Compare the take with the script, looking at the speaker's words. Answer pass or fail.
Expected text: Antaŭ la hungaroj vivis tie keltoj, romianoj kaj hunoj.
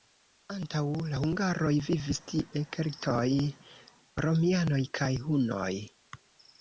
pass